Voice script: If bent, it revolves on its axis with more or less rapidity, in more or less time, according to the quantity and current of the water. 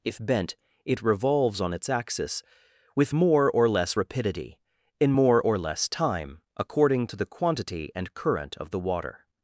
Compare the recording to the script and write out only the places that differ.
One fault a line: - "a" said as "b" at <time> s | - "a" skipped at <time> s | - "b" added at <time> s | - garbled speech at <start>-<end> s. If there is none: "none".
none